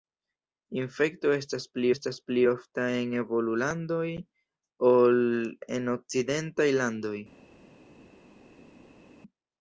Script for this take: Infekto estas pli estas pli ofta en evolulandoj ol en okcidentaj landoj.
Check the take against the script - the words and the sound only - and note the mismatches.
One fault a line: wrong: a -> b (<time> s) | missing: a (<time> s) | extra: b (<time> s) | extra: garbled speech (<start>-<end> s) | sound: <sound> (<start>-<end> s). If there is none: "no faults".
no faults